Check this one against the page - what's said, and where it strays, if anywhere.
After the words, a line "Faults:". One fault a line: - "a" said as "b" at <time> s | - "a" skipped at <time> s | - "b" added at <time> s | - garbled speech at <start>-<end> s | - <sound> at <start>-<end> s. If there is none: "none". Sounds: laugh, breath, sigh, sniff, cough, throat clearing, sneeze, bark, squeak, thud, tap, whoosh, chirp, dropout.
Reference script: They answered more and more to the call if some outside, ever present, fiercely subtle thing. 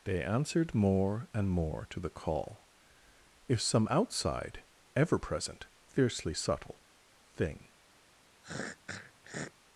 They answered more and more to the call if some outside, ever present, fiercely subtle thing.
Faults:
- throat clearing at 8.4-9.5 s